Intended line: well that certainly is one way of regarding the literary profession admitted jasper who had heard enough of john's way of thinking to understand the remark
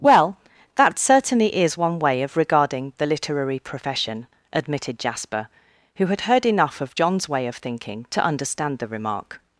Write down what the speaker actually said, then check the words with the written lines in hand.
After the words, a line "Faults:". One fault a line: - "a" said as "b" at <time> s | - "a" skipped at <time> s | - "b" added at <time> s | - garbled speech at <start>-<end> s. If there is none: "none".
well that certainly is one way of regarding the literary profession admitted jasper who had heard enough of john's way of thinking to understand the remark
Faults:
none